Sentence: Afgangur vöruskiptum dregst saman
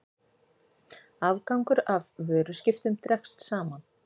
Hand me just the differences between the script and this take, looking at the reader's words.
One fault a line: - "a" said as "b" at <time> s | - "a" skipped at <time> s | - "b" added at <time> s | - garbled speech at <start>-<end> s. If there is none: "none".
- "af" added at 1.9 s